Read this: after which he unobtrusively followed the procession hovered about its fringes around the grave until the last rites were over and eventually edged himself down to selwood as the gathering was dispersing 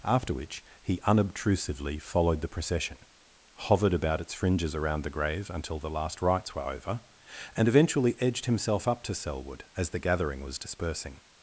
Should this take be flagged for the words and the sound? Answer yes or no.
yes